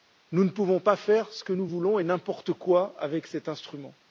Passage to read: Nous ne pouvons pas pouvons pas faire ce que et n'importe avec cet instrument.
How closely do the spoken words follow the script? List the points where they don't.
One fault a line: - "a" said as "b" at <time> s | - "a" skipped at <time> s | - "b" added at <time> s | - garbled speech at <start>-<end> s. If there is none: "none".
- "pouvons pas" skipped at 0.9 s
- "nous voulons" added at 1.5 s
- "quoi" added at 2.5 s